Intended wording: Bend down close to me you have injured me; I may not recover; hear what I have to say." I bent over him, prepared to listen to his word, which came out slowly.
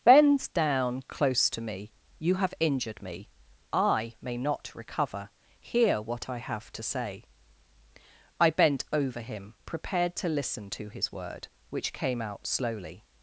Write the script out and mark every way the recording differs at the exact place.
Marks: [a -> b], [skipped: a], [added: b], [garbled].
Bend down close to me you have injured me; I may not recover; hear what I have to say." I bent over him, prepared to listen to his word, which came out slowly.